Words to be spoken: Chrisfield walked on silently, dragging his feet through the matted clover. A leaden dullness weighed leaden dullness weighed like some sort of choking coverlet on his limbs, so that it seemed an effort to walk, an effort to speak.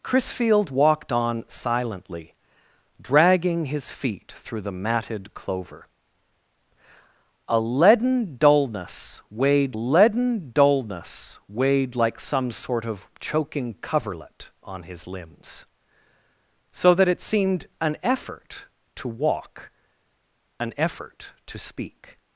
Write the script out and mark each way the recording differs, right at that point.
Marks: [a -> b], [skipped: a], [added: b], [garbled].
Chrisfield walked on silently, dragging his feet through the matted clover. A leaden dullness weighed leaden dullness weighed like some sort of choking coverlet on his limbs, so that it seemed an effort to walk, an effort to speak.